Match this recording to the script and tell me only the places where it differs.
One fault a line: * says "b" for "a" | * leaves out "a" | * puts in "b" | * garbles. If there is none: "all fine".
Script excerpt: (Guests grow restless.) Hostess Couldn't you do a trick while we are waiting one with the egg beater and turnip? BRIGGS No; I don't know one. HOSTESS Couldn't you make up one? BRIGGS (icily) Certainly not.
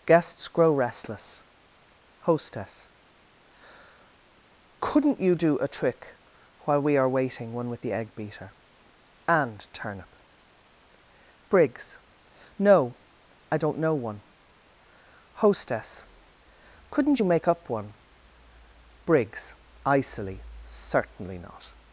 all fine